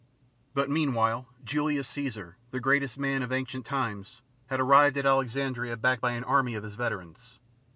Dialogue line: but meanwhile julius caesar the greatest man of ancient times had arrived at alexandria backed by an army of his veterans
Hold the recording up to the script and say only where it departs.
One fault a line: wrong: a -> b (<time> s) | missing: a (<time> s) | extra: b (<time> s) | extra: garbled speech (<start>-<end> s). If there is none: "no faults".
no faults